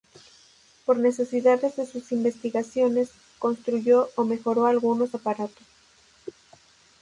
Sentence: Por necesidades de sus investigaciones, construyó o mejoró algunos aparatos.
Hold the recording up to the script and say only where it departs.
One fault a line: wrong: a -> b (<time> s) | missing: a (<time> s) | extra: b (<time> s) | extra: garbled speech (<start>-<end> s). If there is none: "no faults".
no faults